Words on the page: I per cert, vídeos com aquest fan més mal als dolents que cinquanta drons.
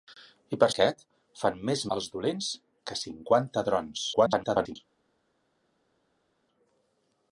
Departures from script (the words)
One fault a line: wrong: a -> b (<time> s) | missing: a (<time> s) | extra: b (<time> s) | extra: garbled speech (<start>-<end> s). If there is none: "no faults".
missing: cert vídeos com (0.7 s)
missing: mal (1.8 s)
extra: garbled speech (4.1-4.8 s)